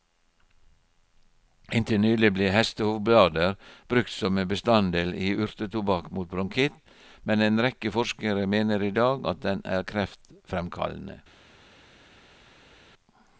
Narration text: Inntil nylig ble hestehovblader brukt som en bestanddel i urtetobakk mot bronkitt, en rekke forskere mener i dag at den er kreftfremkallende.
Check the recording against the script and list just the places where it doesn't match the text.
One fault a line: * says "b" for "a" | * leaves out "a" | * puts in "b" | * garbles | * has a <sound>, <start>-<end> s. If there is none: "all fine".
* puts in "men"